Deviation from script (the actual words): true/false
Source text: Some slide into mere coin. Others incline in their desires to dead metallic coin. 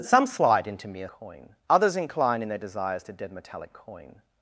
false